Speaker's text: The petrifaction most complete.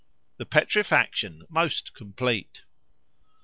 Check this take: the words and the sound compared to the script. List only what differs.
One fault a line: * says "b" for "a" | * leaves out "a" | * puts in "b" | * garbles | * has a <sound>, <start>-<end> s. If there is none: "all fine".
all fine